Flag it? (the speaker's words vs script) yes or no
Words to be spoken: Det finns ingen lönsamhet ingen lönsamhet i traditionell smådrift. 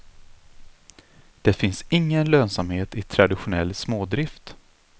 yes